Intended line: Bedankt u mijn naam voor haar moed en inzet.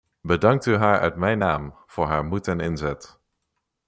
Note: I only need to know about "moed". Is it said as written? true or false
true